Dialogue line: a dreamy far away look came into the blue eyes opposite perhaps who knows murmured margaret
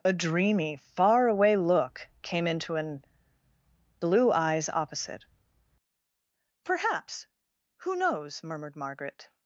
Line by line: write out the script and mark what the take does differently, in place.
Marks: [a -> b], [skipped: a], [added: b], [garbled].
a dreamy far away look came into [the -> an] blue eyes opposite perhaps who knows murmured margaret